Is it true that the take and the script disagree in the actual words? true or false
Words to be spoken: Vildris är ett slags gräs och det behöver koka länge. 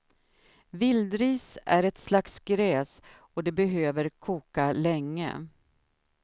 false